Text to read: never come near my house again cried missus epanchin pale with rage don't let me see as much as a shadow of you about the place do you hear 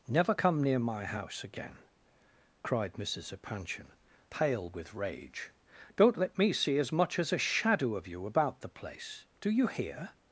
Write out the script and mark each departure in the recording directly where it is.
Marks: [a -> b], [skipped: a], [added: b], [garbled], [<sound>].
never come near my house again cried missus epanchin pale with rage don't let me see as much as a shadow of you about the place do you hear